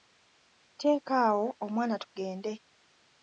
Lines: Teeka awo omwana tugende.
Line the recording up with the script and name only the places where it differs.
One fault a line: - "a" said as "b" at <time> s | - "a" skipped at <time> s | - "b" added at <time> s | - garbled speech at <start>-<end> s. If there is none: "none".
none